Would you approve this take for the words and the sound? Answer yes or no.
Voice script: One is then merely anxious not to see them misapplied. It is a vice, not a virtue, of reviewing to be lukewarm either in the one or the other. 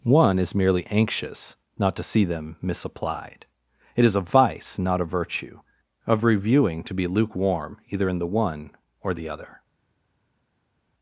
no